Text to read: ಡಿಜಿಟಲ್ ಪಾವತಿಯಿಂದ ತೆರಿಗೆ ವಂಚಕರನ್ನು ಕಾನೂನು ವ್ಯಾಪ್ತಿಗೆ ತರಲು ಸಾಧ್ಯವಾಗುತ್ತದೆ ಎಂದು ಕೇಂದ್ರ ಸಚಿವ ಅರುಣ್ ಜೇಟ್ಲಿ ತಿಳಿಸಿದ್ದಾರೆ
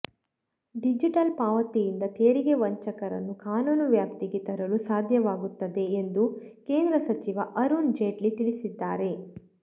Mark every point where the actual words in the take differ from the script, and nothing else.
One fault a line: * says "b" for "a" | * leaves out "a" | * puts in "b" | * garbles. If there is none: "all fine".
all fine